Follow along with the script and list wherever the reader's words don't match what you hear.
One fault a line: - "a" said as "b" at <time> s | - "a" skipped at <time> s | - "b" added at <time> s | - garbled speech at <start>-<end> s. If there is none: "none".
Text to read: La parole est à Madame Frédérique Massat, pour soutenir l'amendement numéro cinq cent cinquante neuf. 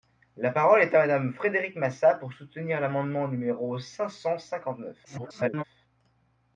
- garbled speech at 5.0-5.6 s